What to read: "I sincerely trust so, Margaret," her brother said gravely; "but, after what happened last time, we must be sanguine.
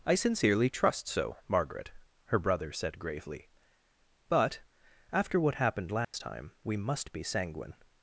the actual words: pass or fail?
pass